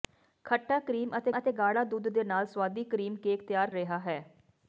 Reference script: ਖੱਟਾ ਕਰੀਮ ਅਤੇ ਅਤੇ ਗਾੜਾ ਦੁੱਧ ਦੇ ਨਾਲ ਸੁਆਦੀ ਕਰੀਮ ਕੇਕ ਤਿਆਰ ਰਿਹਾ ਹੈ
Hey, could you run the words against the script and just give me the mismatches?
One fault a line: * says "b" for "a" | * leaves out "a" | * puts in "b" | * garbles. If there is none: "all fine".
all fine